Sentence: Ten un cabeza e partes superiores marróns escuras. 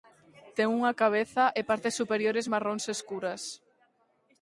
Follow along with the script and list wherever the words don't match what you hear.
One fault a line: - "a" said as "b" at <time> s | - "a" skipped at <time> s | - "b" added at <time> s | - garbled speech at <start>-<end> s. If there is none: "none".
- "un" said as "unha" at 0.8 s